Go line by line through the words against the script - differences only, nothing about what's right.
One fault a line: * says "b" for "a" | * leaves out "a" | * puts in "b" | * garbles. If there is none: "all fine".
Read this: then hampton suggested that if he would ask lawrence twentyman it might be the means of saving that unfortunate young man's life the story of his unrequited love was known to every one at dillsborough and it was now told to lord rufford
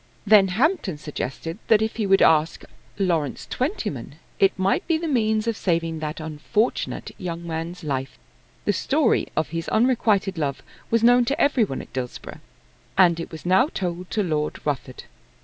all fine